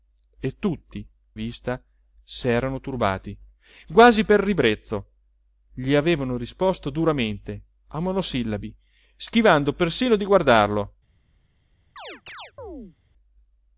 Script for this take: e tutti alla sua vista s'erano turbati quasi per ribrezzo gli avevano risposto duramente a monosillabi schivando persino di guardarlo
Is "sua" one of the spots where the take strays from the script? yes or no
yes